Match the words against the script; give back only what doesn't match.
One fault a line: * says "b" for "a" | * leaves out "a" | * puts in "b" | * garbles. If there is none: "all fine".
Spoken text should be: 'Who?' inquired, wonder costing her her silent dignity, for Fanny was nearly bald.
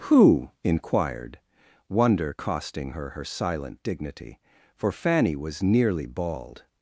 all fine